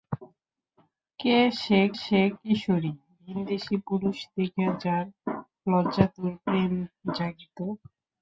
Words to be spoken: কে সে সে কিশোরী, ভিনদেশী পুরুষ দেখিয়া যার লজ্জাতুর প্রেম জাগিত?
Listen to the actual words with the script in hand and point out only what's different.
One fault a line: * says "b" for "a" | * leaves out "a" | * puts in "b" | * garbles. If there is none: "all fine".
all fine